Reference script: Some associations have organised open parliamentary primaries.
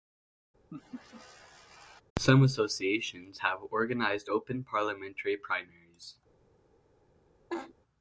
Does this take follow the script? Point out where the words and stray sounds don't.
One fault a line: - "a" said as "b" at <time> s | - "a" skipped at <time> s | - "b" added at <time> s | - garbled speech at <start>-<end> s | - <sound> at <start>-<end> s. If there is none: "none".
- laugh at 0.7-2.0 s
- laugh at 7.5-7.7 s